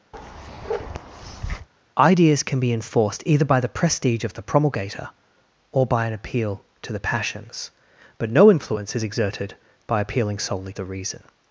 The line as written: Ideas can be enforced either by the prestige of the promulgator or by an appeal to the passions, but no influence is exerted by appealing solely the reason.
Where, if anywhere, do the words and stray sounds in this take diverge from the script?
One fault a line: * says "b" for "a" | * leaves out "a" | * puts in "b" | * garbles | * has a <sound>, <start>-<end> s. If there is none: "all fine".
* has a bark, 0.1-1.7 s